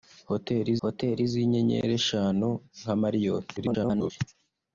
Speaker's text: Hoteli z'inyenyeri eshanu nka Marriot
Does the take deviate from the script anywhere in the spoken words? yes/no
yes